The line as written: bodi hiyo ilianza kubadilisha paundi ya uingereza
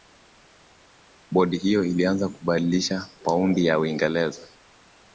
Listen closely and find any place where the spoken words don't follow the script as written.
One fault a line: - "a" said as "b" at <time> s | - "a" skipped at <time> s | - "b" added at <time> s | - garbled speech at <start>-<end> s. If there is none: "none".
none